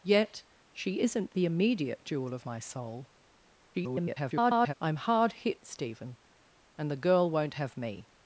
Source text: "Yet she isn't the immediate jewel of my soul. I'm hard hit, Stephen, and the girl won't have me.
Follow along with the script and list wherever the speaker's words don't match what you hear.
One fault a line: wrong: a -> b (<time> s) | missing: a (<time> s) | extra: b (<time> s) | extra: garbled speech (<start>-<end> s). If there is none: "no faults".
extra: garbled speech (3.7-4.7 s)